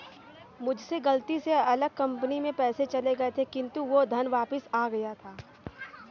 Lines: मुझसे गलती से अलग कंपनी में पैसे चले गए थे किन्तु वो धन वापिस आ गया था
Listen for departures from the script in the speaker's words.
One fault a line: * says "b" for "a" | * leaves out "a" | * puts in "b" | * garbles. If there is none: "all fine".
all fine